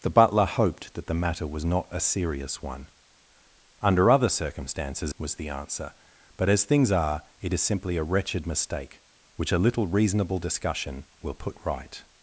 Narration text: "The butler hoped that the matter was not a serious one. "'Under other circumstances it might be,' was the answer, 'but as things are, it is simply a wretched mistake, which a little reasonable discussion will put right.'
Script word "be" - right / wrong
wrong